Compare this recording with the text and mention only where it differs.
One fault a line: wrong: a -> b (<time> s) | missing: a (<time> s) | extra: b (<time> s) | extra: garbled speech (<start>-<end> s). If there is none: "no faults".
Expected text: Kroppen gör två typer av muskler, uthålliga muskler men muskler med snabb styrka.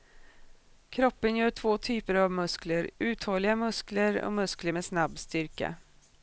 wrong: men -> och (4.2 s)